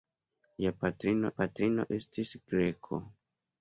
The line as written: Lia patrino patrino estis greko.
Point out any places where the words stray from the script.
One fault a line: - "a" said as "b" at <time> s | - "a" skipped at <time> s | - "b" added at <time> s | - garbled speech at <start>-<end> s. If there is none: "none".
none